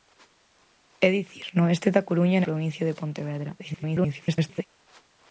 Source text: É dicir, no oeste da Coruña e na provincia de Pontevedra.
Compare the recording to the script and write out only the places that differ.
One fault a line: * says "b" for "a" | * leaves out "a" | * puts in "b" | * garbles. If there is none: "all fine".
* leaves out "na"
* garbles